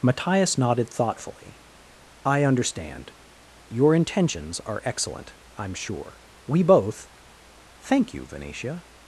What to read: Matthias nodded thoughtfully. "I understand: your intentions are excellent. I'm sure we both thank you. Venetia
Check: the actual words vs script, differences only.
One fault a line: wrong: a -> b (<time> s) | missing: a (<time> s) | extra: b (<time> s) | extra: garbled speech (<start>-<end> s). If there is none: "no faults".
no faults